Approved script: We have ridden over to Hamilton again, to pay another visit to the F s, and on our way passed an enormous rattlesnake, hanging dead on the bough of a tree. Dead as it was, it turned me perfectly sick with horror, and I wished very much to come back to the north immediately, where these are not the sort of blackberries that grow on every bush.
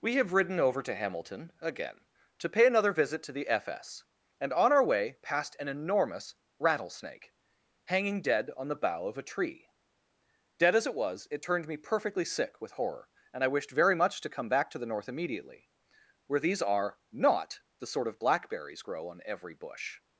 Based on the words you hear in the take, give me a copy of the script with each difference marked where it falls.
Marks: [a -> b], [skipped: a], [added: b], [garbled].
We have ridden over to Hamilton again, to pay another visit to the F s, and on our way passed an enormous rattlesnake, hanging dead on the bough of a tree. Dead as it was, it turned me perfectly sick with horror, and I wished very much to come back to the north immediately, where these are not the sort of blackberries [skipped: that] grow on every bush.